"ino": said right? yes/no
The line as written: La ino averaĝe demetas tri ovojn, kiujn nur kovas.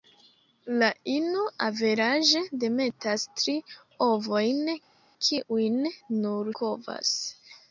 yes